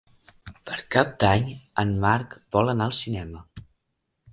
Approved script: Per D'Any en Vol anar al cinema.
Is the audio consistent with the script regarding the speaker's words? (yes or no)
no